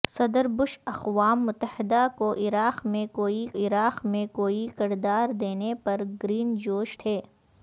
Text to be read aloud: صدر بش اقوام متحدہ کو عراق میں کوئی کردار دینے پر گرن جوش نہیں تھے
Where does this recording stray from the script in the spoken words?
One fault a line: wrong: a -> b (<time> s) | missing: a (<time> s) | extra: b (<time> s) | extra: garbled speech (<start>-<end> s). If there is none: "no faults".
extra: عراق میں کوئی (3.6 s)
missing: نہیں (7.0 s)